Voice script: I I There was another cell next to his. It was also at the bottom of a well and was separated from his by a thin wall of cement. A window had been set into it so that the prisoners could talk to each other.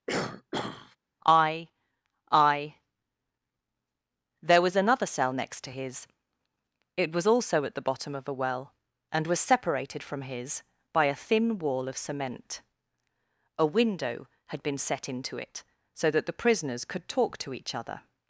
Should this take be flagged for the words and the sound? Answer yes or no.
yes